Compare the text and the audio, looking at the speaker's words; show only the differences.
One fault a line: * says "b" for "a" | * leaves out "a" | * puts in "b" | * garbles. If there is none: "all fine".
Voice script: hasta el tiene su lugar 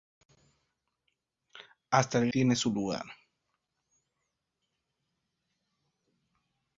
all fine